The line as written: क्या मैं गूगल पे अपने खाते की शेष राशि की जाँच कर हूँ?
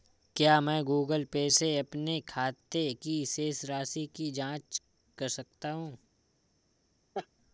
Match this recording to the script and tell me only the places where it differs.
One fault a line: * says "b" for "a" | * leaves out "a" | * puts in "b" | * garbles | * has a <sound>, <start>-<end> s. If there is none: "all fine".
* puts in "से"
* puts in "सकता"
* has a laugh, 7.1-7.3 s